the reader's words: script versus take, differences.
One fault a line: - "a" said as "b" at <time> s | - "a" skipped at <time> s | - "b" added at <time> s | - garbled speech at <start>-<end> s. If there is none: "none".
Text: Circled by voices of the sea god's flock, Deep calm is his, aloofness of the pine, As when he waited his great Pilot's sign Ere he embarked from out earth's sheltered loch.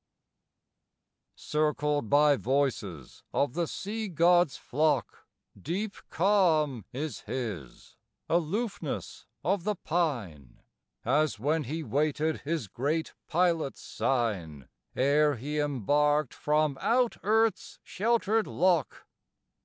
none